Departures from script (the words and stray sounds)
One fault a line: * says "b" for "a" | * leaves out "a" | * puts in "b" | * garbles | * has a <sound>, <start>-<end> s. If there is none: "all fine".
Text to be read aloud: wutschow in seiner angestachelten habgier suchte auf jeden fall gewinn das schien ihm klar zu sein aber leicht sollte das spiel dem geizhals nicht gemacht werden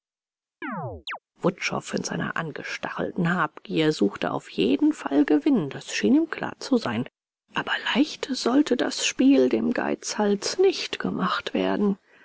* has a chirp, 0.6-1.2 s